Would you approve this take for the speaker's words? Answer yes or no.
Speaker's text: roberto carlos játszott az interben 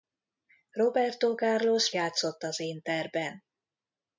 yes